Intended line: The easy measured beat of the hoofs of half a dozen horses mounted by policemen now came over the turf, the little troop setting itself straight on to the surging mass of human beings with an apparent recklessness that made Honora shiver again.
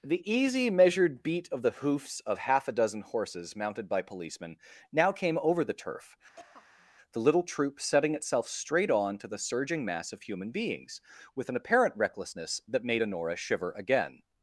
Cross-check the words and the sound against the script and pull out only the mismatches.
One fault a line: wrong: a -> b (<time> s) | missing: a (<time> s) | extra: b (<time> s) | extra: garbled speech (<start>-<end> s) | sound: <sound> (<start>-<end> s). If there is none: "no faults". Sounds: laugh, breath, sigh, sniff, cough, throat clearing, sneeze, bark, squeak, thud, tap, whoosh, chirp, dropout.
sound: throat clearing (6.4-6.9 s)